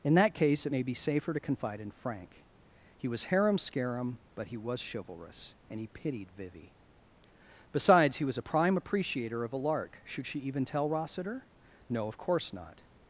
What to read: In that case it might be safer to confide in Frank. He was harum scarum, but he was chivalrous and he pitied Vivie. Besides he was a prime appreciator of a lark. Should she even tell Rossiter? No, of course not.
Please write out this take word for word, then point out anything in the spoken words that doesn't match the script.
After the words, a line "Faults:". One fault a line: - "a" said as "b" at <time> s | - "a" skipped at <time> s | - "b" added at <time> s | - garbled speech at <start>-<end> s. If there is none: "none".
In that case it may be safer to confide in Frank. He was harum scarum, but he was chivalrous and he pitied Vivie. Besides he was a prime appreciator of a lark. Should she even tell Rossiter? No, of course not.
Faults:
- "might" said as "may" at 0.7 s